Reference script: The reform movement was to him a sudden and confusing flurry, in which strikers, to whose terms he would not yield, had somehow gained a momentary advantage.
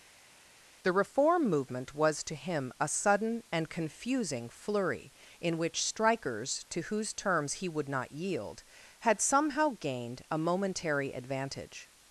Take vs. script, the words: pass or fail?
pass